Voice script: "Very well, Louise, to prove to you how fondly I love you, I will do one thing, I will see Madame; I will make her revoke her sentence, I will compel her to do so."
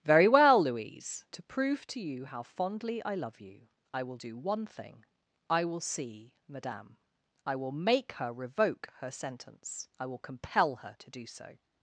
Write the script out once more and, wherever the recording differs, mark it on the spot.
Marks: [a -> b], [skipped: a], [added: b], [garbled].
"Very well, Louise, to prove to you how fondly I love you, I will do one thing, I will see Madame; I will make her revoke her sentence, I will compel her to do so."